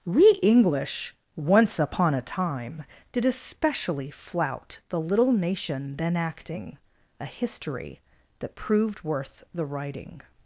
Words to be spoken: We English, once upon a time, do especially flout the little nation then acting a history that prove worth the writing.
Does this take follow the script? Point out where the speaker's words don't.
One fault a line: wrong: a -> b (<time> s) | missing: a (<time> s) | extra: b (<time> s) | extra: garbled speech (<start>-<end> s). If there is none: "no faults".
wrong: do -> did (3.1 s)
wrong: prove -> proved (8.6 s)